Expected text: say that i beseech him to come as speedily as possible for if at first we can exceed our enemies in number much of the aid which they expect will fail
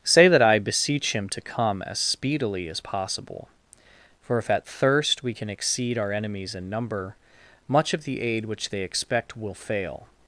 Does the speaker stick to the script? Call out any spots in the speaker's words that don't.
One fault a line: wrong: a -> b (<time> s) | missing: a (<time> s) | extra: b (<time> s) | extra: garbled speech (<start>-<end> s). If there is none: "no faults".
wrong: first -> thirst (4.7 s)